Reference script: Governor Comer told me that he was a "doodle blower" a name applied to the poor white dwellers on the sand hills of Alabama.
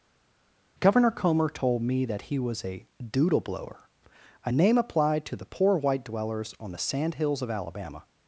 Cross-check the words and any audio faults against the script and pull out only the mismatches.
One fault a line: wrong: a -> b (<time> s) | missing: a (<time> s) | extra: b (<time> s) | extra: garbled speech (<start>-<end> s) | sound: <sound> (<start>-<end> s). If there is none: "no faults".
no faults